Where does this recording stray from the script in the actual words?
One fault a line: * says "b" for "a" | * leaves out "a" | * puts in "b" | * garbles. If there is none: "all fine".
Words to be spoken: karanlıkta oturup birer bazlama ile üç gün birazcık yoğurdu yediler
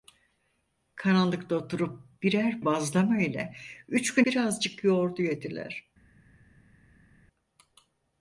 all fine